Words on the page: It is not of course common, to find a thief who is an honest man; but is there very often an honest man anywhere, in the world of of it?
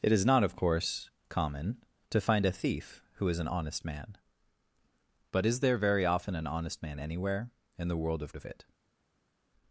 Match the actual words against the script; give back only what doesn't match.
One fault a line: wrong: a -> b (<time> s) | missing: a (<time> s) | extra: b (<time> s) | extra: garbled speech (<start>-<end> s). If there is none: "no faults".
no faults